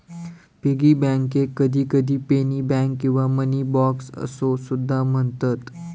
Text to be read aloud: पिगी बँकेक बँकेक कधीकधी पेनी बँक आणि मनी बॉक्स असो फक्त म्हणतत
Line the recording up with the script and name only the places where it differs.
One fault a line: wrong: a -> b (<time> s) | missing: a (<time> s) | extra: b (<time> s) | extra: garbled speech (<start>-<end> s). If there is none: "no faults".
missing: बँकेक (1.5 s)
wrong: आणि -> किंवा (3.0 s)
wrong: फक्त -> सुद्धा (4.7 s)